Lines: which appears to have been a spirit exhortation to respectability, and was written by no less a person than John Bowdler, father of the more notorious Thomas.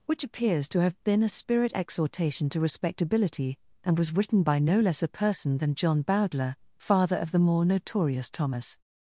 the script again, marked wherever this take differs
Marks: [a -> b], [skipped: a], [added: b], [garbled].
which appears to have been a spirit exhortation to respectability, and was written by no less a person than John Bowdler, father of the more notorious Thomas.